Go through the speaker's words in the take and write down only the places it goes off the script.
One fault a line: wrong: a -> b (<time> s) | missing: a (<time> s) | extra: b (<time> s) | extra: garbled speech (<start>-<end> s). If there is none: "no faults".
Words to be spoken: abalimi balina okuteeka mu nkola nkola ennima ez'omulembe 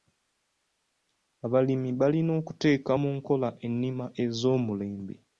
missing: nkola (3.5 s)